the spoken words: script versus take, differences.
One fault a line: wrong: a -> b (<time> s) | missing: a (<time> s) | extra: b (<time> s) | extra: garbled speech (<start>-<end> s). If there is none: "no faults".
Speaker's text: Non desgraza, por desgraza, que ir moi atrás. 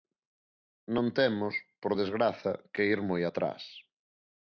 wrong: desgraza -> temos (1.2 s)